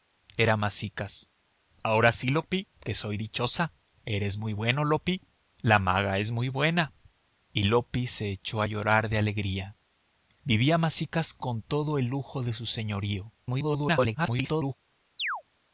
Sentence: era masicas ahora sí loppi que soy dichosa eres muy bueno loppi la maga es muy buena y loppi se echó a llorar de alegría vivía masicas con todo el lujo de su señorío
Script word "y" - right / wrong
right